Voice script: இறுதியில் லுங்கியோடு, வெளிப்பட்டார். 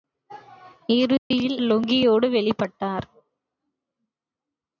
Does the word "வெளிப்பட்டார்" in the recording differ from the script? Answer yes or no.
no